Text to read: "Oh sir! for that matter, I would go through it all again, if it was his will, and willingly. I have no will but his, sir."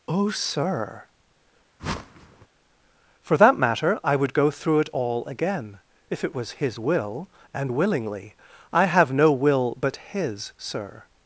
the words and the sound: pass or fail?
fail